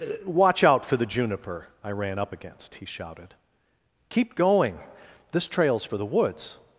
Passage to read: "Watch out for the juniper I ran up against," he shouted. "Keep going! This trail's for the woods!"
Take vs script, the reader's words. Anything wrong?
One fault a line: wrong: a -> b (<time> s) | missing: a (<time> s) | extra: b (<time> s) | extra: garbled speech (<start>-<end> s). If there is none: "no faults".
no faults